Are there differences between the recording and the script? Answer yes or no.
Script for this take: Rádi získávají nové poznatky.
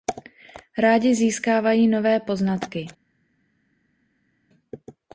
no